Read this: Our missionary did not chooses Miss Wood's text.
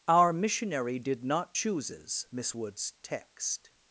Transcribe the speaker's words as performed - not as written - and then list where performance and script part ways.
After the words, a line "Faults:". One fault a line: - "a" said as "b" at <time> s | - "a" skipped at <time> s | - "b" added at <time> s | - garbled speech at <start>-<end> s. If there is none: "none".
Our missionary did not chooses Miss Wood's text.
Faults:
none